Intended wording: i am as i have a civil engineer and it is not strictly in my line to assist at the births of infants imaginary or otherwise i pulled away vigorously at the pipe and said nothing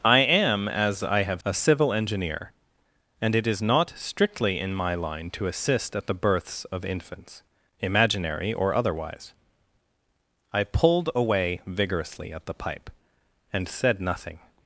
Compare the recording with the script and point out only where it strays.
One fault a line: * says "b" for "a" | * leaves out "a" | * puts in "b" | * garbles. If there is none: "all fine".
all fine